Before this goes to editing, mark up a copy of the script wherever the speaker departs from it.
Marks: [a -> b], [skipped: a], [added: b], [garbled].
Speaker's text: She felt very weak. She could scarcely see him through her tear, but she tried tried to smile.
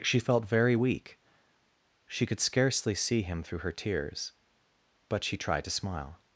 She felt very weak. She could scarcely see him through her [tear, -> tears] but she tried [skipped: tried] to smile.